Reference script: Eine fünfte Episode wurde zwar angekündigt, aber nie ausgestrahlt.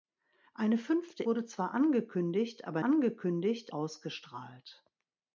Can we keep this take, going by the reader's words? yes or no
no